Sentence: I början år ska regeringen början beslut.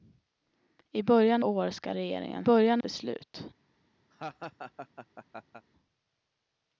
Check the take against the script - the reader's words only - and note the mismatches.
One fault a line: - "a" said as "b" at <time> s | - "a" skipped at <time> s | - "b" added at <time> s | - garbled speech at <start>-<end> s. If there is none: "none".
none